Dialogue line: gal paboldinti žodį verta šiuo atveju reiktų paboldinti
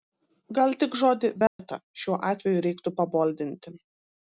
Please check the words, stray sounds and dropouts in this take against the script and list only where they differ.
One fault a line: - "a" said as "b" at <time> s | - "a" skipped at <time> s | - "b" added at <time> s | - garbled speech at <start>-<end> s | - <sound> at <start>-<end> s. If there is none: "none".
- "paboldinti" said as "tik" at 0.8 s
- dropout at 1.5-1.6 s